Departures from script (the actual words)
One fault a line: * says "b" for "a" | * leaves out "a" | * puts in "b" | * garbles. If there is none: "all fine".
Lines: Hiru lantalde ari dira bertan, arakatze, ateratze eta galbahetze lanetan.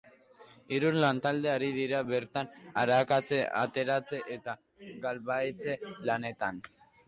all fine